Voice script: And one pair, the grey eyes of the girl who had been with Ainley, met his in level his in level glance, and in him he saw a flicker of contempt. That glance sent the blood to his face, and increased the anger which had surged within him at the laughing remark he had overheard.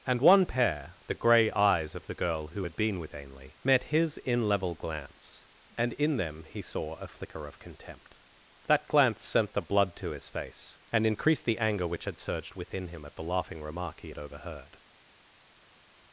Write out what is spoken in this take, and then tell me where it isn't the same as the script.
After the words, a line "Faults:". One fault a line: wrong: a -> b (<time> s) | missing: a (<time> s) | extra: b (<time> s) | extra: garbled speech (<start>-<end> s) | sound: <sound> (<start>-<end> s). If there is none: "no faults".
And one pair, the grey eyes of the girl who had been with Ainley, met his in level glance, and in them he saw a flicker of contempt. That glance sent the blood to his face, and increased the anger which had surged within him at the laughing remark he had overheard.
Faults:
missing: his in level (4.7 s)
wrong: him -> them (6.1 s)